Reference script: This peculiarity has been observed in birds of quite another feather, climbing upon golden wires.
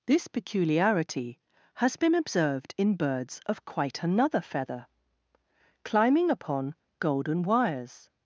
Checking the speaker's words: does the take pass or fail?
pass